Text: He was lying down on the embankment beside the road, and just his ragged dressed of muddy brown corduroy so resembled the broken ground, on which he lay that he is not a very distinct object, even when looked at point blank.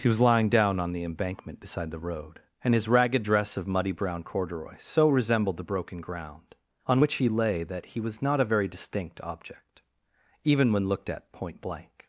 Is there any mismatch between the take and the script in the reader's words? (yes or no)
yes